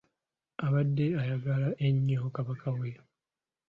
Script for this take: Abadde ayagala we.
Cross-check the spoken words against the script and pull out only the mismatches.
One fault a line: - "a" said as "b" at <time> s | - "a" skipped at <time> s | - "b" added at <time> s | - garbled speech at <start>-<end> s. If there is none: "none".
- "ennyo Kabaka" added at 1.9 s